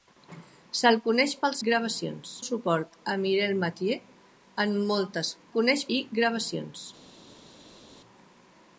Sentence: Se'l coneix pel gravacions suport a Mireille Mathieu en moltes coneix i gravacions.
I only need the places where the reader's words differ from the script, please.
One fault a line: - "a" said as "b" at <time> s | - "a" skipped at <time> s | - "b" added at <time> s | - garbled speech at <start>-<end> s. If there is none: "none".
none